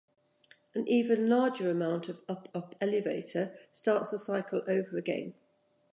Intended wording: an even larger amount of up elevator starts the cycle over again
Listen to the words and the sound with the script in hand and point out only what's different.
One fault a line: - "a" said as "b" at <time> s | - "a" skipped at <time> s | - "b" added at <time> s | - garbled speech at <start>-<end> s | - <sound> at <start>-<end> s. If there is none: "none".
- "up" added at 2.5 s